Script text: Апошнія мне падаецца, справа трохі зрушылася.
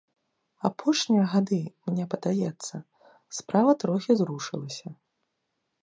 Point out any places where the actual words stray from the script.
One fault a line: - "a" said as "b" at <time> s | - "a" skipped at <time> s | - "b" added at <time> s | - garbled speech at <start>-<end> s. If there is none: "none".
- "гады" added at 1.3 s